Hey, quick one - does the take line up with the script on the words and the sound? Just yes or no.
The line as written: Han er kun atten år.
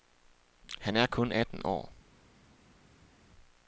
yes